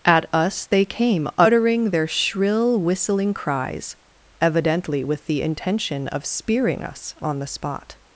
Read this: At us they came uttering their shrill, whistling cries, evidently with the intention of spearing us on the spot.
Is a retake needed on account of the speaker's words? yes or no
no